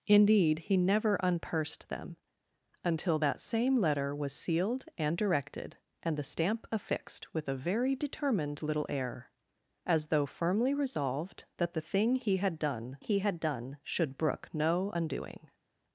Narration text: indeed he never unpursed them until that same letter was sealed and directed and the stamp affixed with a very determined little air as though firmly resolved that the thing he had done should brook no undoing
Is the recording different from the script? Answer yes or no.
yes